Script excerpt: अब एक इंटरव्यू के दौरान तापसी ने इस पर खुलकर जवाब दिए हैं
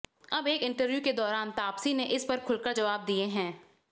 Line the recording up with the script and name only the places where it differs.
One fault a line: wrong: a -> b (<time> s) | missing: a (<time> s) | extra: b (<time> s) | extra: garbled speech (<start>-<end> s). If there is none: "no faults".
no faults